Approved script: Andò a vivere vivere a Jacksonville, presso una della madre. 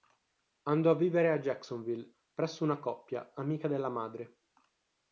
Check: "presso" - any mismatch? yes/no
no